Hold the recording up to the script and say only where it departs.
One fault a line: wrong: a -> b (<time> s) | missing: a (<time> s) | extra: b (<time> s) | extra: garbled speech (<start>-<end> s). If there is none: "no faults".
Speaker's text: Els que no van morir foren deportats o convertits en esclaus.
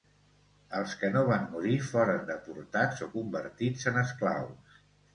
no faults